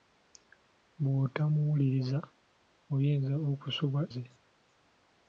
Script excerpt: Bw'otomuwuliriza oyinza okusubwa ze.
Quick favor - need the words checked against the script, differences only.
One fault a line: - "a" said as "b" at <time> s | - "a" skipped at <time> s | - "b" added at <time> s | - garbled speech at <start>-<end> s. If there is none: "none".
none